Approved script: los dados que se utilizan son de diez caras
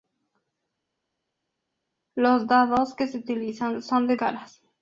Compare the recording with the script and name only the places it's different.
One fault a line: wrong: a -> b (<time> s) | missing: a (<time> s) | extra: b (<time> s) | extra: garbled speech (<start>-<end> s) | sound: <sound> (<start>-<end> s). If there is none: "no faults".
missing: diez (4.1 s)